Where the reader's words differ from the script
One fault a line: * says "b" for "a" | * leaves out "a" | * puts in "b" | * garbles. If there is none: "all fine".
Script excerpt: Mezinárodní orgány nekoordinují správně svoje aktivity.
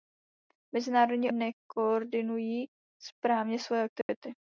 * leaves out "orgány"